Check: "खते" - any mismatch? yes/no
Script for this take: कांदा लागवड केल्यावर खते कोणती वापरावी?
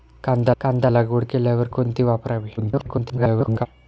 yes